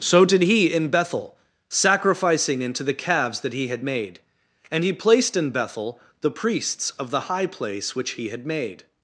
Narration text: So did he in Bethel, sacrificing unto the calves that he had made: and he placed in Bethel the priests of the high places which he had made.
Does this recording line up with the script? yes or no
no